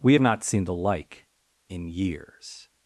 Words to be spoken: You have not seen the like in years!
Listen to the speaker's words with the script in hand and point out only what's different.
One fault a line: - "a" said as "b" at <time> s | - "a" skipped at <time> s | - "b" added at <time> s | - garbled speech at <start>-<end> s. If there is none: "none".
- "You" said as "We" at 0.0 s